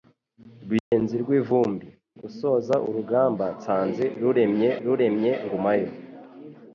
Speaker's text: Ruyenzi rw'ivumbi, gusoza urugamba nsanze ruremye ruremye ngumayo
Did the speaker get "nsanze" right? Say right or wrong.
right